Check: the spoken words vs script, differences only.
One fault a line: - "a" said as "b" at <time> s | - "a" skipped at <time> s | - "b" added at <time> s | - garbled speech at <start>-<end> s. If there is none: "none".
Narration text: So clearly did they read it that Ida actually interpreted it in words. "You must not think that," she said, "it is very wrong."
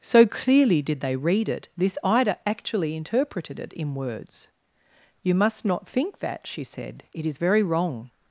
- "that" said as "this" at 1.8 s